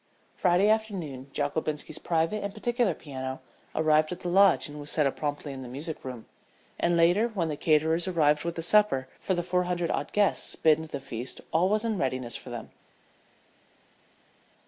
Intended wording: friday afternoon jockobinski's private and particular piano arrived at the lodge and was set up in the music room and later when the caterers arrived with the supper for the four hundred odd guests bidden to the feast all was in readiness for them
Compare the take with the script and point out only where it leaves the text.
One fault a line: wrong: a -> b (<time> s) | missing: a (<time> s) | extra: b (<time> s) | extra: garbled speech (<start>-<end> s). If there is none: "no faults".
extra: promptly (5.2 s)